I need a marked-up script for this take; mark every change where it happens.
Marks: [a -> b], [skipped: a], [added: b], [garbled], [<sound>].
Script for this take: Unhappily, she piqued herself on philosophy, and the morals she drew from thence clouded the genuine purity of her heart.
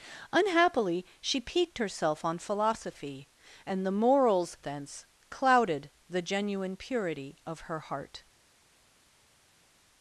Unhappily, she piqued herself on philosophy, and the morals [skipped: she drew from] thence clouded the genuine purity of her heart.